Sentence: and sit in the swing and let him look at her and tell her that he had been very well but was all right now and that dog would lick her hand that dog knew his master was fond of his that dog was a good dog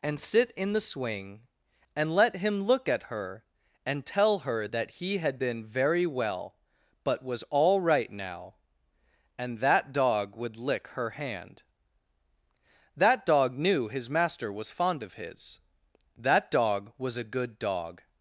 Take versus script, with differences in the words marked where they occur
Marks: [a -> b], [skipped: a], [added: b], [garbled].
and sit in the swing and let him look at her and tell her that he had been very well but was all right now and that dog would lick her hand that dog knew his master was fond of his that dog was a good dog